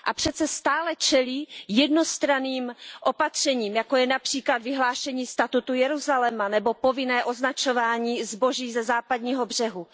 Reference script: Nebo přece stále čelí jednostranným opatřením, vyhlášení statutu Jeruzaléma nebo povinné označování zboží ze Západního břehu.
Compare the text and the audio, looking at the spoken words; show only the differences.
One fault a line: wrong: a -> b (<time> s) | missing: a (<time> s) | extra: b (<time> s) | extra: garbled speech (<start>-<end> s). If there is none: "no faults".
wrong: Nebo -> A (0.0 s)
extra: jako je například (3.8 s)